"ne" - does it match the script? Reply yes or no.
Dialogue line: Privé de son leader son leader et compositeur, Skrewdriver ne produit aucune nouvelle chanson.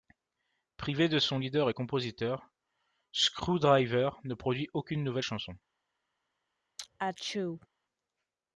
yes